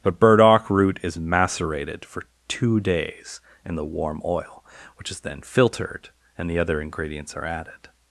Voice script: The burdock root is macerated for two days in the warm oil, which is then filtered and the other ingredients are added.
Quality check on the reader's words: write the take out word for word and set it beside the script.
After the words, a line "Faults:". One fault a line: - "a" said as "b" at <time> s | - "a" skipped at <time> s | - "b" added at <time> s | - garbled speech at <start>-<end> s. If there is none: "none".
But burdock root is macerated for two days in the warm oil, which is then filtered and the other ingredients are added.
Faults:
- "The" said as "But" at 0.0 s